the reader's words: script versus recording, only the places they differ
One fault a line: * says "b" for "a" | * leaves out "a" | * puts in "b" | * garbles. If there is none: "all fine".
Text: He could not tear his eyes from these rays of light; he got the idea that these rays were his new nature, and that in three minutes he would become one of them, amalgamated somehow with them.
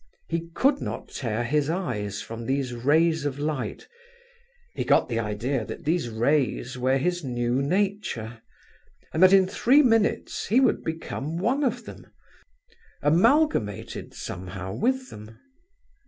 all fine